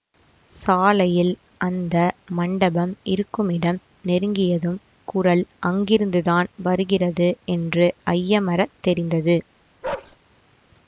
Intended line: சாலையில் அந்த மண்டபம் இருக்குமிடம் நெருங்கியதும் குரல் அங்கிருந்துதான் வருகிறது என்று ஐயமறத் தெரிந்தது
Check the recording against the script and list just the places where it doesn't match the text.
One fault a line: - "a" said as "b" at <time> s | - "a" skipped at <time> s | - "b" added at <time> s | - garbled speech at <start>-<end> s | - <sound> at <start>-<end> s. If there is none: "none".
- bark at 9.8-10.2 s